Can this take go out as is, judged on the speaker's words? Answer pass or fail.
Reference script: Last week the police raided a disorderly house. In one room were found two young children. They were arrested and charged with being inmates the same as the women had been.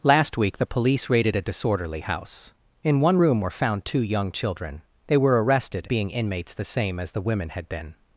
fail